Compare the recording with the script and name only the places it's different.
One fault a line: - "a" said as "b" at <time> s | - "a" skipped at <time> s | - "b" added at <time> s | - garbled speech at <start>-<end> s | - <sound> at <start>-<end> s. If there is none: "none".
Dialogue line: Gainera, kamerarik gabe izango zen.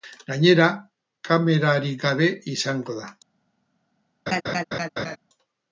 - "zen" said as "da" at 3.0 s
- laugh at 4.3-5.2 s